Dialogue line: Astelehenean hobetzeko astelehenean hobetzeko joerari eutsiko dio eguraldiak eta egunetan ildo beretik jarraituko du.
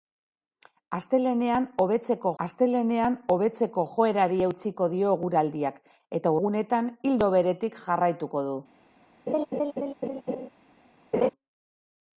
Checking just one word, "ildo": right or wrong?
right